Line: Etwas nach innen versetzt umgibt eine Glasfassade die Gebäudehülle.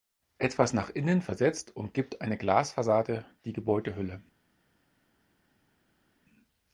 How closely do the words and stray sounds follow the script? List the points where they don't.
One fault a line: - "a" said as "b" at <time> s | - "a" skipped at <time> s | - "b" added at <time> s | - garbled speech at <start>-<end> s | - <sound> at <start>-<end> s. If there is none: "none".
none